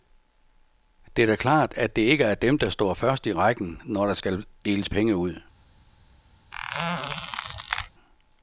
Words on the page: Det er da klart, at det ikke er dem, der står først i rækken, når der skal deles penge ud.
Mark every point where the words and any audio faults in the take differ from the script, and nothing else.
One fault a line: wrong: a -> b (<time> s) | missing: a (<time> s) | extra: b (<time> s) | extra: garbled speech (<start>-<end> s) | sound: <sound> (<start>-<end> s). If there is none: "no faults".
sound: squeak (6.5-7.9 s)